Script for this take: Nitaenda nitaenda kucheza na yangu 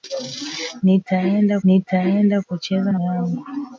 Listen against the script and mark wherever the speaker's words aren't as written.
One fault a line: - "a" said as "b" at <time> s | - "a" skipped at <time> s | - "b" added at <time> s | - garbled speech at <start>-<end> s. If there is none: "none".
none